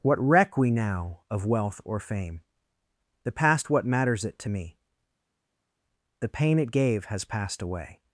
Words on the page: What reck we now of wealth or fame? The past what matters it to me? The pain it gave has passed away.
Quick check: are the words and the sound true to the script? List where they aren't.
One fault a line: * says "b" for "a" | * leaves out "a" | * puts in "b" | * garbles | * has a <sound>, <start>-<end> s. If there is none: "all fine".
all fine